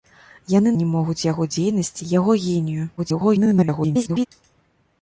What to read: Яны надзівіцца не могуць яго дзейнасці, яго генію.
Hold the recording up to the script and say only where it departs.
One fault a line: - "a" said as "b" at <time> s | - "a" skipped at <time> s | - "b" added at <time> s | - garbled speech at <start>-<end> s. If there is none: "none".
- "надзівіцца" skipped at 0.7 s
- garbled speech at 3.0-4.3 s